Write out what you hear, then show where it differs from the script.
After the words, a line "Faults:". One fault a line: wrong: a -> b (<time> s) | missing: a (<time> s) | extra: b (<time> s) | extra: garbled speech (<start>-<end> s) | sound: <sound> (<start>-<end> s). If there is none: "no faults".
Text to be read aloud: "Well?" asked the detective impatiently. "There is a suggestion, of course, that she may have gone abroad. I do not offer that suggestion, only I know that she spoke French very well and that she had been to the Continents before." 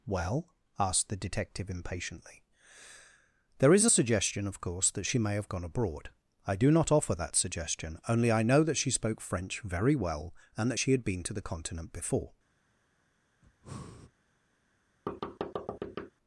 "Well?" asked the detective impatiently. "There is a suggestion, of course, that she may have gone abroad. I do not offer that suggestion, only I know that she spoke French very well and that she had been to the Continent before."
Faults:
wrong: Continents -> Continent (11.4 s)
sound: breath (13.4-14.1 s)
sound: thud (15.1-16.1 s)